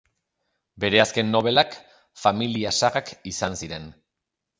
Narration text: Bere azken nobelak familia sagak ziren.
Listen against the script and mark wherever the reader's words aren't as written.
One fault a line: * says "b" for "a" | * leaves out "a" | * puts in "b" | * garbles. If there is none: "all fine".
* puts in "izan"